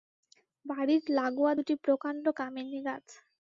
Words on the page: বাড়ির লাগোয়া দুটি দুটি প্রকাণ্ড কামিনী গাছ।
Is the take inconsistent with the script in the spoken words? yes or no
yes